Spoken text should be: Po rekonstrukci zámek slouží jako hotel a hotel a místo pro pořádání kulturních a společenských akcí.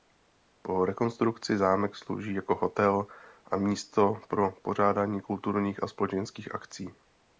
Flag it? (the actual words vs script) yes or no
yes